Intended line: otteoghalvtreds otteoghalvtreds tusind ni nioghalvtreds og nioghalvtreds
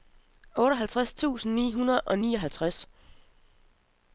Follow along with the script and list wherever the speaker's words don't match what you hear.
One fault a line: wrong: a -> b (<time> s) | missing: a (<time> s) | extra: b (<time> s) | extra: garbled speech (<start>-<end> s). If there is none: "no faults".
missing: otteoghalvtreds (1.1 s)
wrong: nioghalvtreds -> hundrede (1.7 s)